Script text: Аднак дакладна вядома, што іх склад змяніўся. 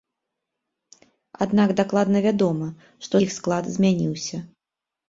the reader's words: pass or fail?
pass